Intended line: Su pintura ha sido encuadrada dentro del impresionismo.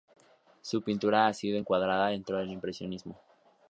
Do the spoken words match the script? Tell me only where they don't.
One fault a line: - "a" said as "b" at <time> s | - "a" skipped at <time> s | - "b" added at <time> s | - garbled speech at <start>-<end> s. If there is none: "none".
none